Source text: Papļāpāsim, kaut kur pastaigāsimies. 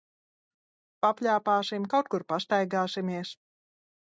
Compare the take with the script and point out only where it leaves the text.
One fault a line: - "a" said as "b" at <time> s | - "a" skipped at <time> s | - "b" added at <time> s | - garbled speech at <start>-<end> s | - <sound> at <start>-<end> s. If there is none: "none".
none